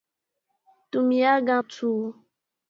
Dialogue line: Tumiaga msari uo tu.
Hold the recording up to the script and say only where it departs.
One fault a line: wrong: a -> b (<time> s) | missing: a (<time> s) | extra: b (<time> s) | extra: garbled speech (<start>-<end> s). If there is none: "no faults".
missing: msari uo (1.6 s)